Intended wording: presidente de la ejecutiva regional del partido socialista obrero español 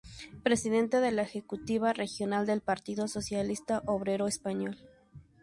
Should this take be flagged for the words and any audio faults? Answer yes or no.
no